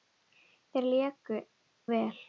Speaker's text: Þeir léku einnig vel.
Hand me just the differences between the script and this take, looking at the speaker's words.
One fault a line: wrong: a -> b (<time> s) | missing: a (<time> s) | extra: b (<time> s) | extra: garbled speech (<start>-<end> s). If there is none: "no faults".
missing: einnig (1.4 s)